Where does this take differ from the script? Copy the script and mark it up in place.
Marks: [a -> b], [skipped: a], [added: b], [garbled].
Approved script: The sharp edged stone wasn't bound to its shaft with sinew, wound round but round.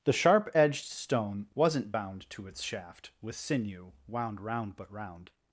The sharp edged stone wasn't bound to its shaft with sinew, wound round but round.